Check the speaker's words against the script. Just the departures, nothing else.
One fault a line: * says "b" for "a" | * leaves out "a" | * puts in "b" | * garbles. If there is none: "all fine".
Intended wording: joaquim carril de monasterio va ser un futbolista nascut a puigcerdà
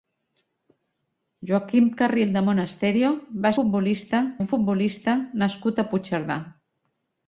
* says "futbolista" for "ser"